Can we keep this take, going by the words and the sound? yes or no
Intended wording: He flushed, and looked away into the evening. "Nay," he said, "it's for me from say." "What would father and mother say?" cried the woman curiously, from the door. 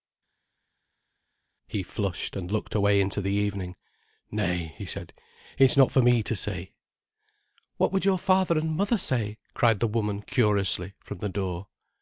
no